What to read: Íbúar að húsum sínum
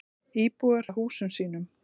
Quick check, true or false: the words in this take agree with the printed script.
true